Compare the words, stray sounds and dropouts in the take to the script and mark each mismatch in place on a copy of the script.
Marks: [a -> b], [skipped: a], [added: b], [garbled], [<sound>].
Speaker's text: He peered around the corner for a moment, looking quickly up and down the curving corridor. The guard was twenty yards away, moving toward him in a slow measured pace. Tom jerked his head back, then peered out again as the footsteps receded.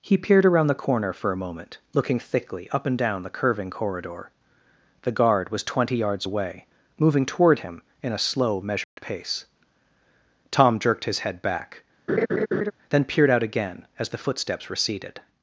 He peered around the corner for a moment, looking [quickly -> thickly] up and down the curving corridor. The guard was twenty yards away, moving toward him in a slow measured [dropout] pace. Tom jerked his head back, [laugh] then peered out again as the footsteps receded.